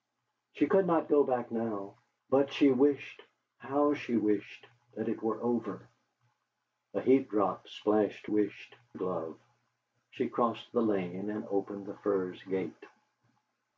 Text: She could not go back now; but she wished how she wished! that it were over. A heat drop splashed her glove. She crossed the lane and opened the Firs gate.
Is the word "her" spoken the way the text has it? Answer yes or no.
no